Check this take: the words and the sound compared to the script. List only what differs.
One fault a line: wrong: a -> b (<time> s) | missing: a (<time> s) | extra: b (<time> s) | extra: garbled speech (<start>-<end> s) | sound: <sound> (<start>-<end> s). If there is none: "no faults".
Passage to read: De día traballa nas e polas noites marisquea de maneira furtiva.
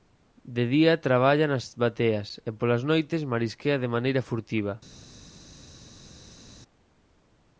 extra: bateas (1.8 s)